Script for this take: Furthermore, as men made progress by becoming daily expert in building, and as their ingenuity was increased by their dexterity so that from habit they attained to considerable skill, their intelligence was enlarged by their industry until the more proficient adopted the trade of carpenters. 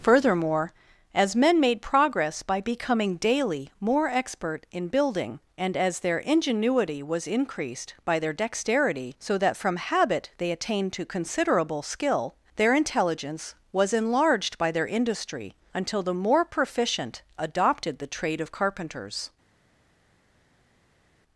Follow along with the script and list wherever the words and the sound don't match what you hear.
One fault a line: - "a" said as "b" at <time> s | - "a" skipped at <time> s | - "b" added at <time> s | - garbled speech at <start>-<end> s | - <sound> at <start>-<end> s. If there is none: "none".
- "more" added at 3.8 s